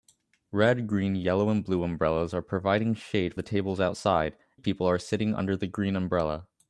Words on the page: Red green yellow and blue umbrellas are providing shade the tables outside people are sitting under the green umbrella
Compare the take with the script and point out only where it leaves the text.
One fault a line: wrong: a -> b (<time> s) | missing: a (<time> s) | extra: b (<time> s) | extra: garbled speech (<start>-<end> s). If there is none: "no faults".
no faults